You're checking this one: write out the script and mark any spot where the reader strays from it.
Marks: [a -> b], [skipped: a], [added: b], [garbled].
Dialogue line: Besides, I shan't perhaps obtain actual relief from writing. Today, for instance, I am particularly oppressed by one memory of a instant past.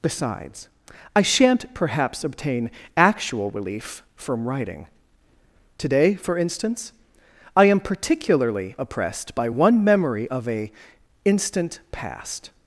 Besides, I shan't perhaps obtain actual relief from writing. Today, for instance, I am particularly oppressed by one memory of a instant past.